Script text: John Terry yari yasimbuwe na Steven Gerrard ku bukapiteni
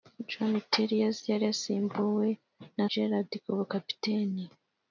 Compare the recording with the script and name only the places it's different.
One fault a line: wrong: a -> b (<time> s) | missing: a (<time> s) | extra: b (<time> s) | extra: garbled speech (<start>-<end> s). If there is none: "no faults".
missing: Steven (2.9 s)